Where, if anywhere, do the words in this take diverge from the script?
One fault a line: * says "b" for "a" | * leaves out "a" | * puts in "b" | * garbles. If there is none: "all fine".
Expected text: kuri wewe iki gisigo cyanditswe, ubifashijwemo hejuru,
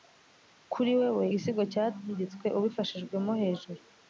* leaves out "iki"